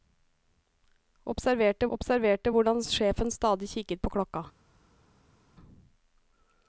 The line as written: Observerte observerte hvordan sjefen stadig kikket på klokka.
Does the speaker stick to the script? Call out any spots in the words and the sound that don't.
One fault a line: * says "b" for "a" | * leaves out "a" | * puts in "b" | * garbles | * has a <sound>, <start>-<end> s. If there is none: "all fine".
all fine